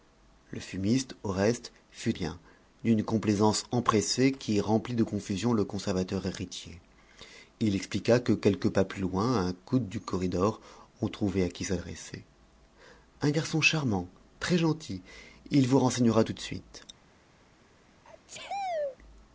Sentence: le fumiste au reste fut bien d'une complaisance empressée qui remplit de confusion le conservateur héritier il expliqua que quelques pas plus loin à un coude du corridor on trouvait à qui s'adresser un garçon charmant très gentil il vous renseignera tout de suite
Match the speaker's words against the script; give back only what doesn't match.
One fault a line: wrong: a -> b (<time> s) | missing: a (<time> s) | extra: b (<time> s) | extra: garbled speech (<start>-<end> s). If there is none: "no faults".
no faults